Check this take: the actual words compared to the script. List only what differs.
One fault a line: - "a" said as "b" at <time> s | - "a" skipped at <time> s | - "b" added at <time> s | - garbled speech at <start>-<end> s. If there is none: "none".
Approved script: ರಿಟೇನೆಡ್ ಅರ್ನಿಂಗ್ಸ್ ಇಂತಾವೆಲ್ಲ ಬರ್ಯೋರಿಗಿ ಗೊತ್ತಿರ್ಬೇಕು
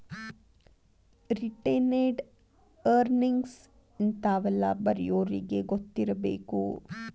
none